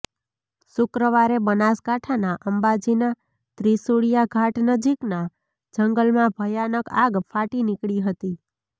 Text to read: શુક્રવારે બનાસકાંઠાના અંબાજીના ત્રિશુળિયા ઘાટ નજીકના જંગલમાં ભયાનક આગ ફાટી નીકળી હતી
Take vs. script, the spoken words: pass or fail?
pass